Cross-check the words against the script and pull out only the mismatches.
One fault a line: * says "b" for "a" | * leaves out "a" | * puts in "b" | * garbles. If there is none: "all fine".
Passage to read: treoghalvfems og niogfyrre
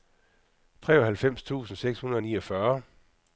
* puts in "tusind seks hundrede"